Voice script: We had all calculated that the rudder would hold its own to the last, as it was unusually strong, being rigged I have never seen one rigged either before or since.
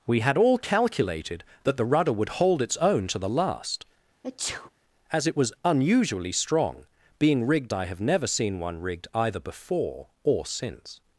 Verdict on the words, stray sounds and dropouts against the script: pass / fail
fail